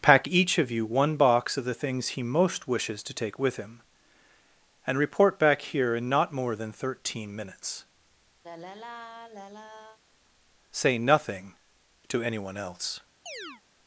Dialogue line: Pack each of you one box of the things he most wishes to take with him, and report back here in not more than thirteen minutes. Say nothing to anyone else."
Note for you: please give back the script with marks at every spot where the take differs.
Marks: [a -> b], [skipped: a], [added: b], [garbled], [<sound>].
Pack each of you one box of the things he most wishes to take with him, and report back here in not more than thirteen minutes. [sigh] Say nothing to anyone else." [chirp]